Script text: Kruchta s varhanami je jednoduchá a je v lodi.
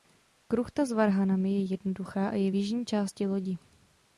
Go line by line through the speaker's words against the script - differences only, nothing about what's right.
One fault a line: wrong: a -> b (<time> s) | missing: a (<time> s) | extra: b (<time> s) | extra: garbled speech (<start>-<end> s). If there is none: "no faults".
extra: jižní části (2.5 s)